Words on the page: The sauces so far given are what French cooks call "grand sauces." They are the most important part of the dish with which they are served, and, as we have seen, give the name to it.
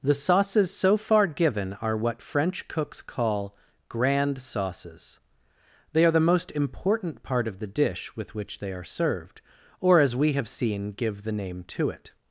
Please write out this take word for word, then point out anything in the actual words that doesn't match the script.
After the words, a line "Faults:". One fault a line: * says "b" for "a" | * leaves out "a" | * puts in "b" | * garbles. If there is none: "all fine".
The sauces so far given are what French cooks call "grand sauces." They are the most important part of the dish with which they are served, or, as we have seen, give the name to it.
Faults:
* says "or" for "and"